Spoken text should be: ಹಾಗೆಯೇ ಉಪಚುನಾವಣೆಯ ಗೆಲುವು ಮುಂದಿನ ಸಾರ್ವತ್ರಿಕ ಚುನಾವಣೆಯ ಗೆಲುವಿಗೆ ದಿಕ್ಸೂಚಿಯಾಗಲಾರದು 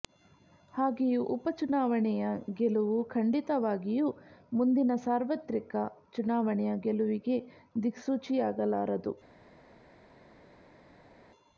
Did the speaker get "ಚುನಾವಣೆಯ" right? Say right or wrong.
right